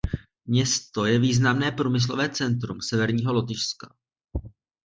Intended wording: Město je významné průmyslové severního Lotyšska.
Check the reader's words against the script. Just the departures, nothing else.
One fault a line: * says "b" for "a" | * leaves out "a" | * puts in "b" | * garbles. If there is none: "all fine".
* puts in "centrum"